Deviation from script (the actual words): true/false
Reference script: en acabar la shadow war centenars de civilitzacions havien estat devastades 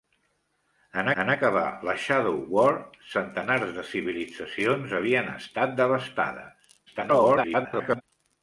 true